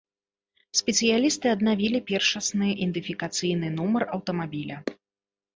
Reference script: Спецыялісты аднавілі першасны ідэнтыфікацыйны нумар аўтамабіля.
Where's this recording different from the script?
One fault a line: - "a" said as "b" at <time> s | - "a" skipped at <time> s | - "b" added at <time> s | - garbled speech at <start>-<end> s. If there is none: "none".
none